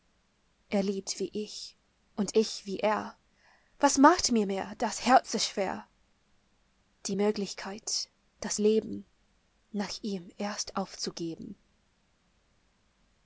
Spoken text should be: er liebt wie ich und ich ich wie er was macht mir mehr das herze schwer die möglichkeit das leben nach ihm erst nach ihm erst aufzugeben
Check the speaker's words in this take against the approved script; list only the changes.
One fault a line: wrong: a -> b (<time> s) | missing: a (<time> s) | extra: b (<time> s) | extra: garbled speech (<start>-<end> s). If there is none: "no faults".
missing: ich (2.6 s)
missing: nach ihm erst (10.7 s)